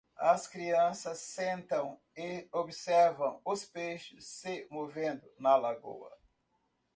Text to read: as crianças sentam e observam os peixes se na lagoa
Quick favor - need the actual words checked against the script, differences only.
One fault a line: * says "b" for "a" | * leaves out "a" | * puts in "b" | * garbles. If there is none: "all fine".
* puts in "movendo"